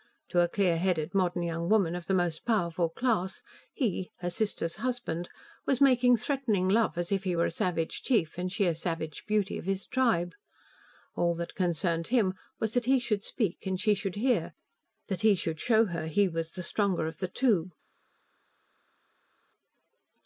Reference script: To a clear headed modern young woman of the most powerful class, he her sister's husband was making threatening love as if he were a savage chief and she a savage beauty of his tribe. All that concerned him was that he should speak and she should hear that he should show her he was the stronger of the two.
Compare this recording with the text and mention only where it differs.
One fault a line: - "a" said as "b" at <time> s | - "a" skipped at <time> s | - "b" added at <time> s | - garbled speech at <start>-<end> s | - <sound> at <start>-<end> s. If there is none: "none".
none